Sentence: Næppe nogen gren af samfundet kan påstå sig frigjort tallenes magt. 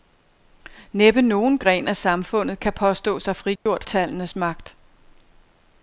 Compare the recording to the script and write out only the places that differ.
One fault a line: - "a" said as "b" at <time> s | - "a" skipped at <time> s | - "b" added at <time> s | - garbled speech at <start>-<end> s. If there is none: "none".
none